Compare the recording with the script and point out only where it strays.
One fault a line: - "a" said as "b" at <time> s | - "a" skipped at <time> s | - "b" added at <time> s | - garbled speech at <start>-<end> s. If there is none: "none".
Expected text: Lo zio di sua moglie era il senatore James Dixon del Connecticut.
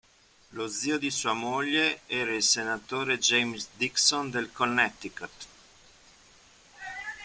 none